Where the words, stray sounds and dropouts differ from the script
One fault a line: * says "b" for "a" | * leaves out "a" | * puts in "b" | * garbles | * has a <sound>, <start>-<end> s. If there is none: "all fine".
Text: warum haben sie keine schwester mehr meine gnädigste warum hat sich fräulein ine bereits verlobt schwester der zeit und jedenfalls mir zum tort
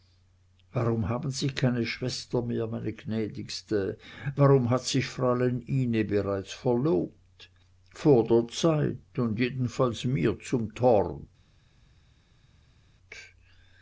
* says "vor" for "schwester"